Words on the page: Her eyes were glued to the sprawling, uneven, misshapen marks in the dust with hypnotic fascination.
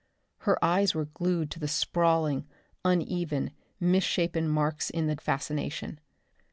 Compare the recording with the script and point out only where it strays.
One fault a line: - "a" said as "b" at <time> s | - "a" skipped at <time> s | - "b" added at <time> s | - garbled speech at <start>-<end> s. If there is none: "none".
- "dust with hypnotic" skipped at 5.2 s